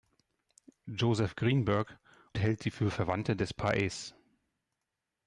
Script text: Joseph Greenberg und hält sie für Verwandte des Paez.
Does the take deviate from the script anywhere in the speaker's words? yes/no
yes